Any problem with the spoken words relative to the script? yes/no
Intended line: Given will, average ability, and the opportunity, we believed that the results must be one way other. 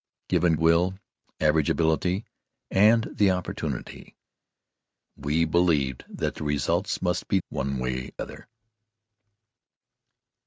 no